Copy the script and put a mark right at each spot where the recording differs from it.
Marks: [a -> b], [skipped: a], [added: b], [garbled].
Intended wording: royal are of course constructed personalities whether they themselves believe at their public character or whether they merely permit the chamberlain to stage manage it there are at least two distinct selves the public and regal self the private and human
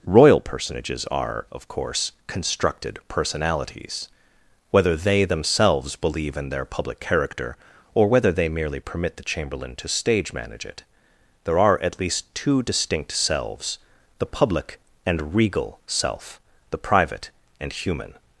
royal [added: personages] are of course constructed personalities whether they themselves believe [at -> in] their public character or whether they merely permit the chamberlain to stage manage it there are at least two distinct selves the public and regal self the private and human